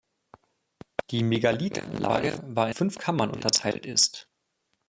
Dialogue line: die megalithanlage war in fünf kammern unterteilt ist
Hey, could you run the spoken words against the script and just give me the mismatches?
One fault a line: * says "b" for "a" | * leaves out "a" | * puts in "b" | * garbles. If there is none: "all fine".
* leaves out "in"